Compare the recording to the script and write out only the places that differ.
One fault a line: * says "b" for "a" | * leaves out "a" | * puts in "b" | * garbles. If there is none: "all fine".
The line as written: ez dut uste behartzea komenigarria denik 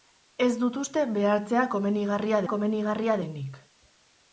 * puts in "komenigarria"